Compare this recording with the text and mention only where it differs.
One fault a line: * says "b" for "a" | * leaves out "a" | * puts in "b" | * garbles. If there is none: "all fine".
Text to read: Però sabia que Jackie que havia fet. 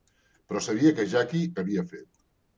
all fine